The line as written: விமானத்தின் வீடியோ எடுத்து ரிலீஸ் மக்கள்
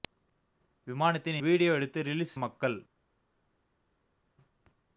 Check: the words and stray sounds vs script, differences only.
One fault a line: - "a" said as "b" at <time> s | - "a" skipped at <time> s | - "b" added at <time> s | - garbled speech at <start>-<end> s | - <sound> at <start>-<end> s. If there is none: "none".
none